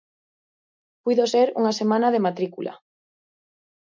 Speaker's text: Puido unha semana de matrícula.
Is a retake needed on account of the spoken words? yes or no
yes